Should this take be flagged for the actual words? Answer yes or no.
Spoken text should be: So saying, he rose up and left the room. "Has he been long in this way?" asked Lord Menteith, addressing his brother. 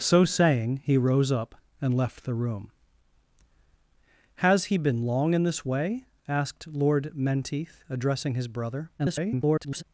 yes